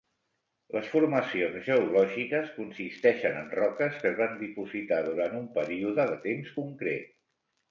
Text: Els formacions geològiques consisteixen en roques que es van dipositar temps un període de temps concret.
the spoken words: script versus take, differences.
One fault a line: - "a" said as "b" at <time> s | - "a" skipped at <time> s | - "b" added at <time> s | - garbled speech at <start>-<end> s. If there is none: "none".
- "Els" said as "Les" at 0.8 s
- "temps" said as "durant" at 5.1 s